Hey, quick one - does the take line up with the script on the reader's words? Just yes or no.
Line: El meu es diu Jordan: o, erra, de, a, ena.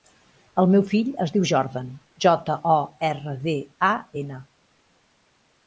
no